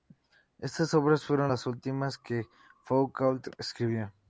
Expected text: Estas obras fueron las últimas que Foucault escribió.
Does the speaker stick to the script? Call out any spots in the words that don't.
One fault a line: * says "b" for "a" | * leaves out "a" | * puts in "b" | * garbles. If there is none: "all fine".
all fine